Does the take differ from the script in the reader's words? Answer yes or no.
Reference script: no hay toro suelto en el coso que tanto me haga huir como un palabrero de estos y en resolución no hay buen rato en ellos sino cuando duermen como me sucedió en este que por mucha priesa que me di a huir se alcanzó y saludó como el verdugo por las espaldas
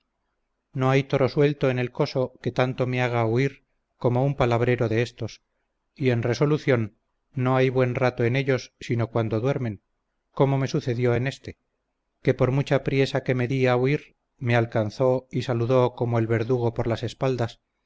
yes